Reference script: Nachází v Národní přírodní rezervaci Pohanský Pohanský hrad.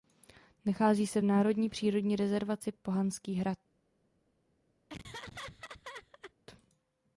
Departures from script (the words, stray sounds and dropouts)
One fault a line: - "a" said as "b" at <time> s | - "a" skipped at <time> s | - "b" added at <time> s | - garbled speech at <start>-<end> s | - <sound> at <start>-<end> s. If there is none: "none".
- "se" added at 1.1 s
- "Pohanský" skipped at 3.3 s
- laugh at 4.9-6.3 s